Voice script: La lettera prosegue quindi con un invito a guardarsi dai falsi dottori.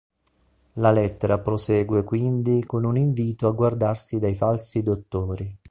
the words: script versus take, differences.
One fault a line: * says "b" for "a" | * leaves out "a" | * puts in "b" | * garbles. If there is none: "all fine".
all fine